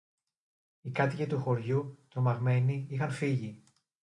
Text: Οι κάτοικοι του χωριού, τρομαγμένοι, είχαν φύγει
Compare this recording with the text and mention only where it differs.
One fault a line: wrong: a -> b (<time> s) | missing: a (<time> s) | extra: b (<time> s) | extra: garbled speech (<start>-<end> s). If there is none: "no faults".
no faults